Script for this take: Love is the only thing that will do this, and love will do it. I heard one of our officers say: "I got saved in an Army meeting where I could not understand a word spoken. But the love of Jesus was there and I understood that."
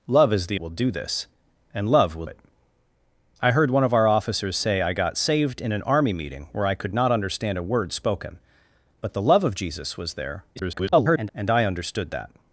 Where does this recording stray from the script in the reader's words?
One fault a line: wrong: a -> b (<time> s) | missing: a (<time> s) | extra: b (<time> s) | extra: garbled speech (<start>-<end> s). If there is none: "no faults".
missing: only thing that (0.6 s)
missing: do (2.3 s)
extra: garbled speech (10.6-11.3 s)